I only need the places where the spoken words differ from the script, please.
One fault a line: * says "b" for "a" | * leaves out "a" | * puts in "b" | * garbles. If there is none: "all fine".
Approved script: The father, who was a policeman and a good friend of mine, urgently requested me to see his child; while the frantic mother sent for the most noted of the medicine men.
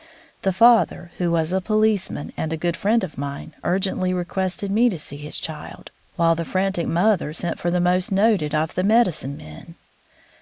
all fine